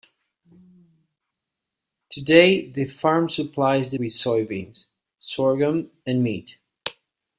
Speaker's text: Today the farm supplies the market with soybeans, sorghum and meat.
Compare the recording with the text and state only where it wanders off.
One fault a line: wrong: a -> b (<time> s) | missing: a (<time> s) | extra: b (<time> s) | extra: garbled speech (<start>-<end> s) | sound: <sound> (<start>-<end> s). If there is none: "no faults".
missing: market (4.0 s)